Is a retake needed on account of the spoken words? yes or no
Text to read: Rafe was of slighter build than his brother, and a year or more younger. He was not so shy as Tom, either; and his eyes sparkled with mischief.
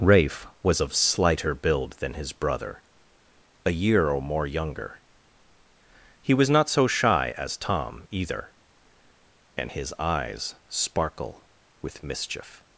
yes